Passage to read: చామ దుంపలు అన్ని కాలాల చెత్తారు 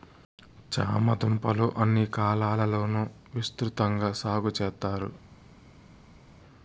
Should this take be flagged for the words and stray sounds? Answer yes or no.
yes